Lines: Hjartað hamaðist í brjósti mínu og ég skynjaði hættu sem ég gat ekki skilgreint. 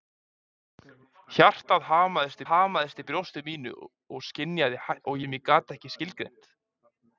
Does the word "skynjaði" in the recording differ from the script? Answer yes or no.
yes